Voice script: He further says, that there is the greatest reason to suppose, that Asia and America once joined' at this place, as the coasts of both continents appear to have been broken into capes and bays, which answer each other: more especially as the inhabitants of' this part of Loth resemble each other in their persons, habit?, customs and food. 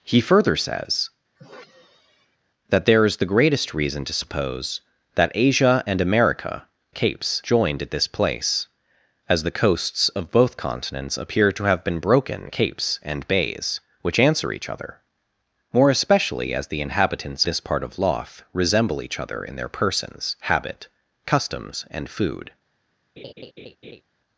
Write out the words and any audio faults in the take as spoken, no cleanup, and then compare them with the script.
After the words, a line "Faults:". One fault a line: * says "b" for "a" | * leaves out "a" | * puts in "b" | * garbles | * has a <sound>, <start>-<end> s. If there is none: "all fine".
He further says, that there is the greatest reason to suppose, that Asia and America capes joined' at this place, as the coasts of both continents appear to have been broken capes and bays, which answer each other: more especially as the inhabitants' this part of Loth resemble each other in their persons, habit?, customs and food.
Faults:
* has a sigh, 1.3-2.4 s
* says "capes" for "once"
* leaves out "into"
* leaves out "of"
* has a laugh, 23.2-24.0 s